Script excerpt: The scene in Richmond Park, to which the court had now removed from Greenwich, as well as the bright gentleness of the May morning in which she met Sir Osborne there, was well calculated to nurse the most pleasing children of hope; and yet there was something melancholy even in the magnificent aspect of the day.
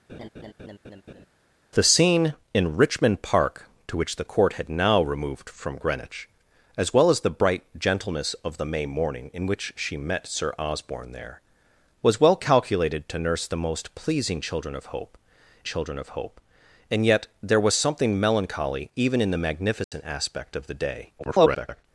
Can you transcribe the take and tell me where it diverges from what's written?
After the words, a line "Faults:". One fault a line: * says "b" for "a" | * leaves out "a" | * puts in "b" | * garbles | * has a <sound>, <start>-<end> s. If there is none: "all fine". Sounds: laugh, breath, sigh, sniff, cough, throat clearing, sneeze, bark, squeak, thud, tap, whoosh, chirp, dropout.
The scene in Richmond Park, to which the court had now removed from Greenwich, as well as the bright gentleness of the May morning in which she met Sir Osborne there, was well calculated to nurse the most pleasing children of hope children of hope; and yet there was something melancholy even in the magnificent aspect of the day. [garbled]
Faults:
* has a laugh, 0.1-1.3 s
* puts in "children of hope"
* has a dropout, 19.8-19.9 s
* garbles